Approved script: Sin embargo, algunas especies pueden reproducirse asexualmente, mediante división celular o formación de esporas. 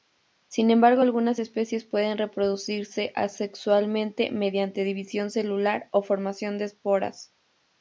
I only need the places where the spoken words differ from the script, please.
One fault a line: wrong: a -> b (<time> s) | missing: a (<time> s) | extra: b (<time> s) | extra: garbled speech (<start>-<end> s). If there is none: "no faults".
no faults